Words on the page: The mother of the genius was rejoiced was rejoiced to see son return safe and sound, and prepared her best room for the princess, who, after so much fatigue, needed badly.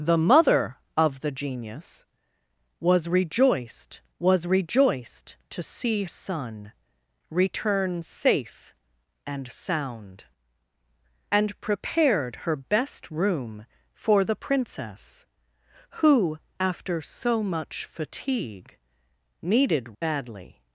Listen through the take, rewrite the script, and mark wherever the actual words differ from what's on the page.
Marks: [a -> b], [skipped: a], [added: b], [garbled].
The mother of the genius was rejoiced was rejoiced to see son return safe and sound, and prepared her best room for the princess, who, after so much fatigue, needed badly.